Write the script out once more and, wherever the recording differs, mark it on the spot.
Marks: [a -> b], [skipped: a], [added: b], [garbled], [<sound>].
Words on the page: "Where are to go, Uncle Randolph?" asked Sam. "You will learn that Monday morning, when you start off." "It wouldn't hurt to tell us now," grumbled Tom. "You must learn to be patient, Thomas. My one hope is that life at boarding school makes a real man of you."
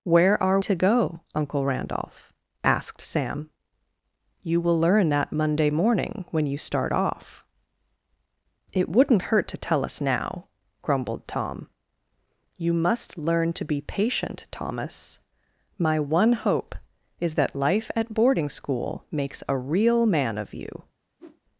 "Where are to go, Uncle Randolph?" asked Sam. "You will learn that Monday morning, when you start off." "It wouldn't hurt to tell us now," grumbled Tom. "You must learn to be patient, Thomas. My one hope is that life at boarding school makes a real man of you." [whoosh]